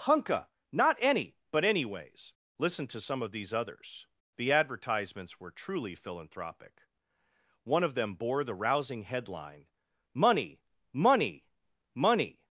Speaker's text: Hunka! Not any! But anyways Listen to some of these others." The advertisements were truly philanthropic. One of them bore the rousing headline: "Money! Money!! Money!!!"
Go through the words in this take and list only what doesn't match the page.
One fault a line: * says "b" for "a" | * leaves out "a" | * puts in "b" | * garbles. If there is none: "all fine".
all fine